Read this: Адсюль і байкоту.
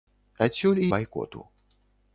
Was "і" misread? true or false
false